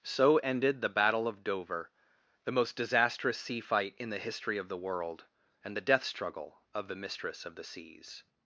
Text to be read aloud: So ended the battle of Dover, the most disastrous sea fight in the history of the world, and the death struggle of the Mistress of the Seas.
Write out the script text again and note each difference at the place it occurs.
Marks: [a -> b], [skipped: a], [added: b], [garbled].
So ended the battle of Dover, the most disastrous sea fight in the history of the world, and the death struggle of the Mistress of the Seas.